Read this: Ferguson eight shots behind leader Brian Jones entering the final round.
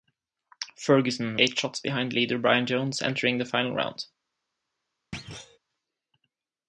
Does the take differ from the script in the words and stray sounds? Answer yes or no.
yes